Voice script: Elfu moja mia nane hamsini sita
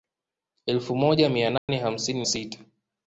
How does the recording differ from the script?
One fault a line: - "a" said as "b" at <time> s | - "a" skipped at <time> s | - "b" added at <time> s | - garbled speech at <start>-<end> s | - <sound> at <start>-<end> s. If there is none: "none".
- dropout at 1.6-1.7 s